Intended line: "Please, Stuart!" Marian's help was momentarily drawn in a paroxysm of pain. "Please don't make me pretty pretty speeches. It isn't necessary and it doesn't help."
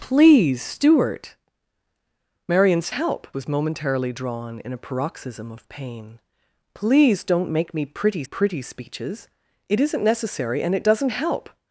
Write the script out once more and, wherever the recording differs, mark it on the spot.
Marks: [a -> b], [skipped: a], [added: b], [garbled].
"Please, Stuart!" Marian's help was momentarily drawn in a paroxysm of pain. "Please don't make me pretty pretty speeches. It isn't necessary and it doesn't help."